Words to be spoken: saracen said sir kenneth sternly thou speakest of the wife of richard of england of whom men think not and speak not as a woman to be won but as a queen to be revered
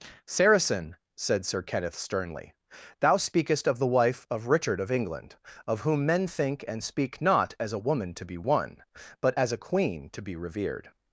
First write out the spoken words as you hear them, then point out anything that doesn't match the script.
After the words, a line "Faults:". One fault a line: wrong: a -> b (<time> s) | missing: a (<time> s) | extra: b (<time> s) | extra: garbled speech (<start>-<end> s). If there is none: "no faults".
saracen said sir kenneth sternly thou speakest of the wife of richard of england of whom men think and speak not as a woman to be won but as a queen to be revered
Faults:
missing: not (6.7 s)